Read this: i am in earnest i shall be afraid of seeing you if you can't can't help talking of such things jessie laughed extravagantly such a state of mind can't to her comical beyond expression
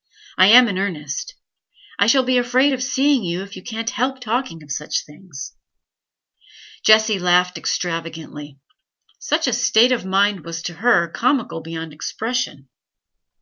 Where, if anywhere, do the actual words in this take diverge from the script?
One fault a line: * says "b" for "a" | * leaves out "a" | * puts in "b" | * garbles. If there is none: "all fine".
* leaves out "can't"
* says "was" for "can't"